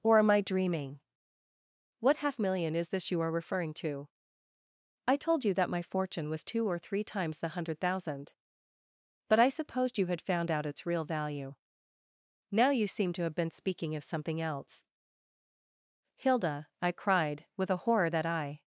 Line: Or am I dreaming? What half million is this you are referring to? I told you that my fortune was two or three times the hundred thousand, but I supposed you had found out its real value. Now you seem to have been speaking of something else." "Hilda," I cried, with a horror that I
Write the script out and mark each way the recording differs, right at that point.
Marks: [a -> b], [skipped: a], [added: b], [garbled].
Or am I dreaming? What half million is this you are referring to? I told you that my fortune was two or three times the hundred thousand, but I supposed you had found out its real value. Now you seem to have been speaking of something else." "Hilda," I cried, with a horror that I